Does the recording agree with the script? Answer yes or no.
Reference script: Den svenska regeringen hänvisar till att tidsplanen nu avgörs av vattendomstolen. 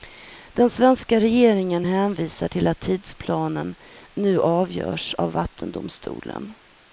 yes